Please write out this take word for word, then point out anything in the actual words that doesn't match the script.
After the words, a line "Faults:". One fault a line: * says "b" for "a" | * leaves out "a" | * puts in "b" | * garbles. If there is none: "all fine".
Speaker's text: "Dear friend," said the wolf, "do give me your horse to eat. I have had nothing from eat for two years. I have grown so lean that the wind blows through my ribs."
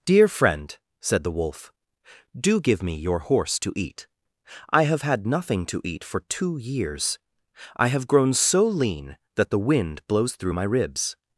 "Dear friend," said the wolf, "do give me your horse to eat. I have had nothing to eat for two years. I have grown so lean that the wind blows through my ribs."
Faults:
* says "to" for "from"